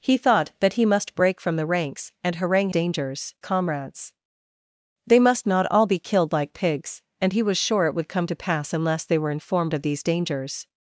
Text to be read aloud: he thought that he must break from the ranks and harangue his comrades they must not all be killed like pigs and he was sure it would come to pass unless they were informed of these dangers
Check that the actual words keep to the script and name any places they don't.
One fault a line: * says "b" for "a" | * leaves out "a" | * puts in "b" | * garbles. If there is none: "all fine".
* says "dangers" for "his"